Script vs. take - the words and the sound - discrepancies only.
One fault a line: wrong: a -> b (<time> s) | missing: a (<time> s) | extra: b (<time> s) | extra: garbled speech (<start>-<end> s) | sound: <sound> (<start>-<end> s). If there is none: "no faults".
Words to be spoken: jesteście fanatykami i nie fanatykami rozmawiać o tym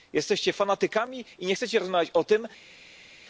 wrong: fanatykami -> chcecie (1.5 s)